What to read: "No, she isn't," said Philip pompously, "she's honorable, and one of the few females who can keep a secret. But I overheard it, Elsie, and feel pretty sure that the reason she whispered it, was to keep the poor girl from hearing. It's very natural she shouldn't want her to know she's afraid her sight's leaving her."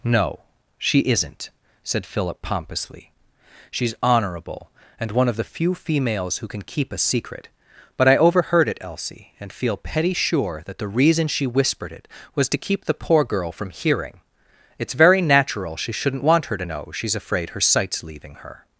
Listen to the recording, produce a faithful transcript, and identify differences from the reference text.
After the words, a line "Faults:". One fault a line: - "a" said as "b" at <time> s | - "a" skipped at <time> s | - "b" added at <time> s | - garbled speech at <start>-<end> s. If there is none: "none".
"No, she isn't," said Philip pompously, "she's honorable, and one of the few females who can keep a secret. But I overheard it, Elsie, and feel petty sure that the reason she whispered it, was to keep the poor girl from hearing. It's very natural she shouldn't want her to know she's afraid her sight's leaving her."
Faults:
- "pretty" said as "petty" at 9.8 s